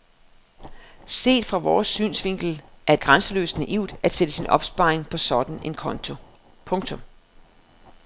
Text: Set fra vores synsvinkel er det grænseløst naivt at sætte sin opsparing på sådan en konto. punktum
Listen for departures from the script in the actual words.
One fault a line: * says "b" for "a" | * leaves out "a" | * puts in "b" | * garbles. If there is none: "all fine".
* leaves out "det"